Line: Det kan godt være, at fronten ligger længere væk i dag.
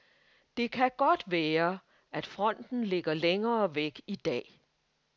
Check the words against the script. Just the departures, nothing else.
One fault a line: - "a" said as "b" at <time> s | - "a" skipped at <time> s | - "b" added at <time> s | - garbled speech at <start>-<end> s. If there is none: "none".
none